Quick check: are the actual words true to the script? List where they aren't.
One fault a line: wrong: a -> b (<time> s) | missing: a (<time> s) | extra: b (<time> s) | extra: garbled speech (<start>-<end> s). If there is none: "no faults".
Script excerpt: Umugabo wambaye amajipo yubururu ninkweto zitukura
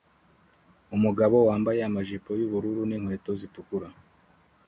no faults